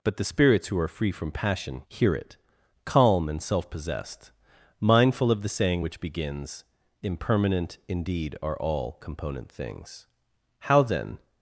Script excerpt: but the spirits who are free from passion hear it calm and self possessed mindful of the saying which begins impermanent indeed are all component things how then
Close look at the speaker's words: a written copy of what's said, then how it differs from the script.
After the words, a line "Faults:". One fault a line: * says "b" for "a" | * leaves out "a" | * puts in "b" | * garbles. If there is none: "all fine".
but the spirits who are free from passion hear it calm and self possessed mindful of the saying which begins impermanent indeed are all component things how then
Faults:
all fine